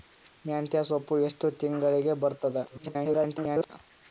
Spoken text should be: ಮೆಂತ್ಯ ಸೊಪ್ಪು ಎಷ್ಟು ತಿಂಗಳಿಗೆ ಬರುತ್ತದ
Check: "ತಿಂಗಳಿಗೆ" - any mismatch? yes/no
no